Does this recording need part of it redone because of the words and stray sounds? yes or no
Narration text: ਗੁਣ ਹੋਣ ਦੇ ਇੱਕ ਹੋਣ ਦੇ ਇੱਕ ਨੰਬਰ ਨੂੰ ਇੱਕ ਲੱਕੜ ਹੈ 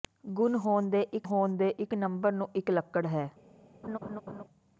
yes